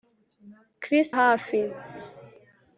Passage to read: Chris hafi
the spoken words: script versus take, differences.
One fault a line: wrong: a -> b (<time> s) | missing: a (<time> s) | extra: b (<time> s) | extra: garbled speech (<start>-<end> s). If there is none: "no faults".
no faults